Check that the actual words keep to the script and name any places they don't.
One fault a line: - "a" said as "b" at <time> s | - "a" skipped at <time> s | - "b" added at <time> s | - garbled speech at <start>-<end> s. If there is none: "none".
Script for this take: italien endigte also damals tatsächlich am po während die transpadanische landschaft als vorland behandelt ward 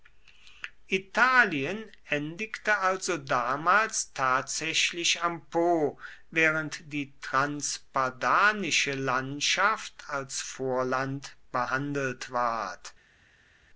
none